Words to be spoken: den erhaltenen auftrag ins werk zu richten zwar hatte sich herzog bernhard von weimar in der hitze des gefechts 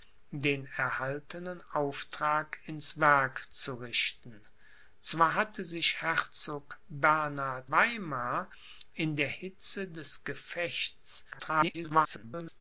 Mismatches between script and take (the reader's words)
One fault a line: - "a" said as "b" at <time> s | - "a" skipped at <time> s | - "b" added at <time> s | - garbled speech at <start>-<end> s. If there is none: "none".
- "von" skipped at 7.7 s
- garbled speech at 11.3-12.6 s